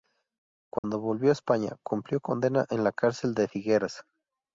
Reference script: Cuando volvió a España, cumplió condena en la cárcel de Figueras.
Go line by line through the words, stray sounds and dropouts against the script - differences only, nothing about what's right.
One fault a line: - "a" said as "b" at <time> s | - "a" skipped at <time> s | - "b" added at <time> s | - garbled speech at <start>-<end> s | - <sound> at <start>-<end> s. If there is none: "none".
- dropout at 0.8-0.8 s